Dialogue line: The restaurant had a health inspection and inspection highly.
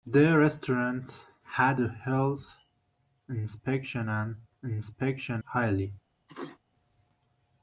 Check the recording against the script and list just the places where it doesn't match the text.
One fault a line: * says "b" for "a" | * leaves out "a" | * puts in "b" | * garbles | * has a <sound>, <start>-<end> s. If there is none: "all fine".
* has a sneeze, 6.3-6.6 s